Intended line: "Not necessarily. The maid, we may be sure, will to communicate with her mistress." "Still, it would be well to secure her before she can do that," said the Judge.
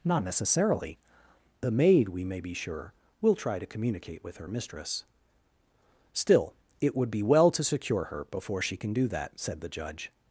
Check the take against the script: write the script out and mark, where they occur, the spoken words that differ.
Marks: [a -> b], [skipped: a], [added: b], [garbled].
"Not necessarily. The maid, we may be sure, will [added: try] to communicate with her mistress." "Still, it would be well to secure her before she can do that," said the Judge.